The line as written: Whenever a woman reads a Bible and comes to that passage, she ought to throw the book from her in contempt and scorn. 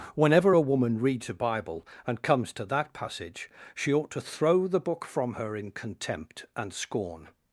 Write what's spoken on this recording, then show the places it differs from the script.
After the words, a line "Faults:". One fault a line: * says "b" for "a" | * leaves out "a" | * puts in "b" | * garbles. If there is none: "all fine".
Whenever a woman reads a Bible and comes to that passage, she ought to throw the book from her in contempt and scorn.
Faults:
all fine